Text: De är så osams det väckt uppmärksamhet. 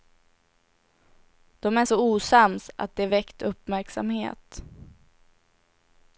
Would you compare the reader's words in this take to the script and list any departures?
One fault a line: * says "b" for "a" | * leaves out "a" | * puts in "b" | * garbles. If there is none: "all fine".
* puts in "att"